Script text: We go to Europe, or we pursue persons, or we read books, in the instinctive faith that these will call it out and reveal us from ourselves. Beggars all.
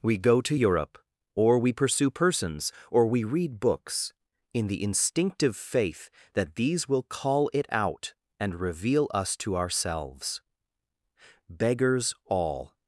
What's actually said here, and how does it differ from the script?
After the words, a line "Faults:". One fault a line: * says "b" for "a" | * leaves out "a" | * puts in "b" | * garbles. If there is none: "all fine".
We go to Europe, or we pursue persons, or we read books, in the instinctive faith that these will call it out and reveal us to ourselves. Beggars all.
Faults:
* says "to" for "from"